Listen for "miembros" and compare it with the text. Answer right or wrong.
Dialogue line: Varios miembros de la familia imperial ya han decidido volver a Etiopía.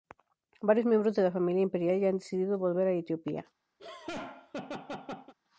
right